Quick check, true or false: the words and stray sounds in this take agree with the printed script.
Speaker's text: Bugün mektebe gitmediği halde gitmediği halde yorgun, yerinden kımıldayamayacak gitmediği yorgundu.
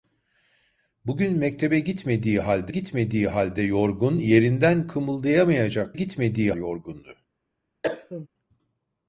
false